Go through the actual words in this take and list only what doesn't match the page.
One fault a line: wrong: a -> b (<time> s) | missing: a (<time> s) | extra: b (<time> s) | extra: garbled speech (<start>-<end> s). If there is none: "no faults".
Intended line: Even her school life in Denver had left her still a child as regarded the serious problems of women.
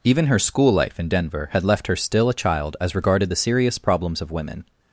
no faults